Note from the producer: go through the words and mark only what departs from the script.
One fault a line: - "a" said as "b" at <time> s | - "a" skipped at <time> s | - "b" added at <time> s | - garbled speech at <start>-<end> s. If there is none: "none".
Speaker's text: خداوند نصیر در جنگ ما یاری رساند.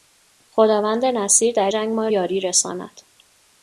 none